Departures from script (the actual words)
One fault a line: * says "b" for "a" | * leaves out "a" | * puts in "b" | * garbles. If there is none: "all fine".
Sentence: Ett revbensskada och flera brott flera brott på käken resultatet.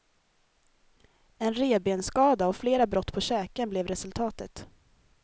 * says "En" for "Ett"
* leaves out "flera brott"
* puts in "blev"